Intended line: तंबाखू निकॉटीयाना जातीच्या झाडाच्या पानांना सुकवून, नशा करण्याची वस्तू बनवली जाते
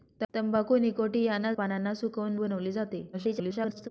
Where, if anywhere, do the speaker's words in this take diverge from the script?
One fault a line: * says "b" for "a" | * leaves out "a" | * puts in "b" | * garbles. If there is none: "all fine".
* leaves out "जातीच्या झाडाच्या"
* leaves out "नशा करण्याची वस्तू"
* garbles